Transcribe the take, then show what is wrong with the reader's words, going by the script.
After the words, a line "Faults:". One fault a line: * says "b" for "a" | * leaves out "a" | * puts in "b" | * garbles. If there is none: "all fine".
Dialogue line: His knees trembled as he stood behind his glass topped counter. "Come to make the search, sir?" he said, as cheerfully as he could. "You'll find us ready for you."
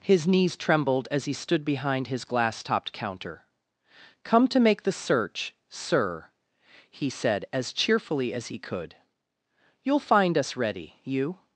His knees trembled as he stood behind his glass topped counter. "Come to make the search, sir?" he said, as cheerfully as he could. "You'll find us ready you."
Faults:
* leaves out "for"